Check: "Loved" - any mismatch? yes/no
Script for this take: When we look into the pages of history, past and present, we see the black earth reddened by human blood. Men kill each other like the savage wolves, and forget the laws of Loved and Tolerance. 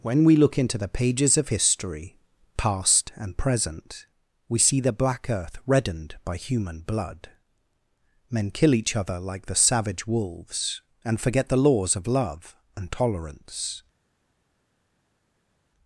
yes